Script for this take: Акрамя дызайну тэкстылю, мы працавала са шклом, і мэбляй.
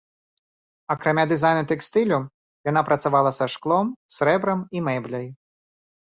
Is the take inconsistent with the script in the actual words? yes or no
yes